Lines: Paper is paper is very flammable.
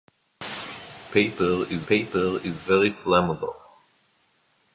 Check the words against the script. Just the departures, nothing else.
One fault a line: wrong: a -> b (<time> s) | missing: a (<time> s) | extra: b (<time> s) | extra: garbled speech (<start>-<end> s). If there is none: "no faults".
no faults